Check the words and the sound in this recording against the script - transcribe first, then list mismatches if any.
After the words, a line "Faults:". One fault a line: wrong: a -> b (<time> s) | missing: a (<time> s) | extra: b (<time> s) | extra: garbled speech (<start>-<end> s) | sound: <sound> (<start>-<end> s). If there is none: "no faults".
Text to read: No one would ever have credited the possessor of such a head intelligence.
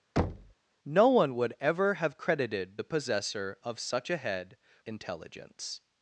No one would ever have credited the possessor of such a head intelligence.
Faults:
sound: thud (0.2-0.5 s)